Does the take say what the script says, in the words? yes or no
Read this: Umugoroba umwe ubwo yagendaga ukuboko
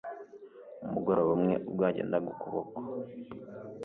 yes